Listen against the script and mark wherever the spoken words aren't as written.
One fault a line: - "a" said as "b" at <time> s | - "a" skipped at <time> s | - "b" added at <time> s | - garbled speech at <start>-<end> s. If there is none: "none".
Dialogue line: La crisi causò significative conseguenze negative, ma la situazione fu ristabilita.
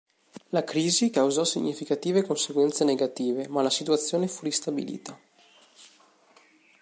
none